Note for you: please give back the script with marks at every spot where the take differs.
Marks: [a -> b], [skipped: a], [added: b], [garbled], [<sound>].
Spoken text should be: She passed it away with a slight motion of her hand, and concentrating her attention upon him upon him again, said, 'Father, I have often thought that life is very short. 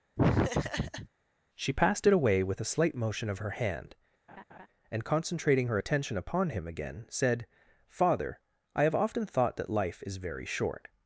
[laugh] She passed it away with a slight motion of her hand, [laugh] and concentrating her attention upon him [skipped: upon him] again, said, 'Father, I have often thought that life is very short.